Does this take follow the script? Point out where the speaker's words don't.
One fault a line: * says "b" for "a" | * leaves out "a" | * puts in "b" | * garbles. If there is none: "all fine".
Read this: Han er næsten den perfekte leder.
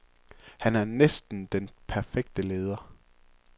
all fine